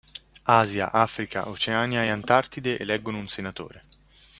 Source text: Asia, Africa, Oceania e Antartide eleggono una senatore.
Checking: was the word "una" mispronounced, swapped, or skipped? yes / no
yes